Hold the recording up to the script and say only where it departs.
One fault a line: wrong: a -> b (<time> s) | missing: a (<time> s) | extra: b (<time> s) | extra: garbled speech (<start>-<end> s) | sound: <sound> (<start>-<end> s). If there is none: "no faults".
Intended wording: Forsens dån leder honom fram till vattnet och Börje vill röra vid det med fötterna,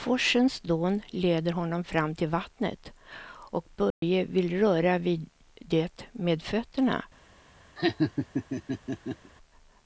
sound: dropout (3.9-4.0 s)
sound: laugh (7.8-9.3 s)